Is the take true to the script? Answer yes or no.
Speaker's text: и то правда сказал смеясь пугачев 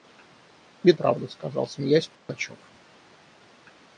no